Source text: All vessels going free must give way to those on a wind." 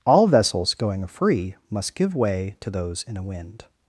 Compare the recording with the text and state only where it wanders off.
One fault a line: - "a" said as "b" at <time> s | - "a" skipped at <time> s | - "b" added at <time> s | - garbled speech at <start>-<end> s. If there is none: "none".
- "on" said as "in" at 3.1 s